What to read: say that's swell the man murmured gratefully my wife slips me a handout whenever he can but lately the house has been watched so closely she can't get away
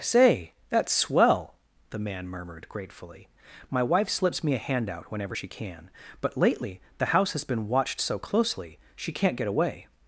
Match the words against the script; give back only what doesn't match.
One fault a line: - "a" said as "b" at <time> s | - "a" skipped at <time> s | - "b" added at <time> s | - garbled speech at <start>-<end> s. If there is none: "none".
- "he" said as "she" at 5.3 s